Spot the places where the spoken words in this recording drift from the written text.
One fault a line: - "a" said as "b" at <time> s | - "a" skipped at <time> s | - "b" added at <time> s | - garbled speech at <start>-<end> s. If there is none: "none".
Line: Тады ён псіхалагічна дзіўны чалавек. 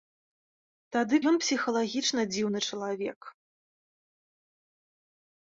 none